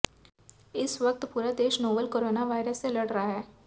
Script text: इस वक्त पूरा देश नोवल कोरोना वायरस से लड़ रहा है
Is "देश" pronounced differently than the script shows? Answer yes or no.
no